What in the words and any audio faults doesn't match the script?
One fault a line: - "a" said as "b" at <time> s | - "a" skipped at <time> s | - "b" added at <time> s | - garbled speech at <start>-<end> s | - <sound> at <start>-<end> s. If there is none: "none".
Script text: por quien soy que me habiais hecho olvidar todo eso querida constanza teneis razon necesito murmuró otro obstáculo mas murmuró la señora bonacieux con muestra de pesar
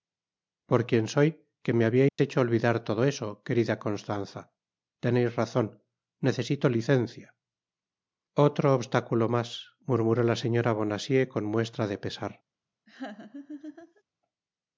- dropout at 2.1-2.2 s
- "murmuró" said as "licencia" at 6.8 s
- laugh at 12.9-14.0 s